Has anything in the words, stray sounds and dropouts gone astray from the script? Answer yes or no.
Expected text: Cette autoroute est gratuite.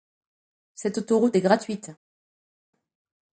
no